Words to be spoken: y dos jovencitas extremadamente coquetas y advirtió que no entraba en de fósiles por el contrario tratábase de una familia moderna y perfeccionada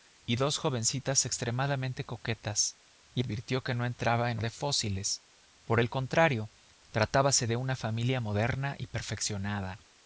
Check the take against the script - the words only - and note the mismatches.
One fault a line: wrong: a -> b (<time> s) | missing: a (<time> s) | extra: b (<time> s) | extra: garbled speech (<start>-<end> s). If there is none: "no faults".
no faults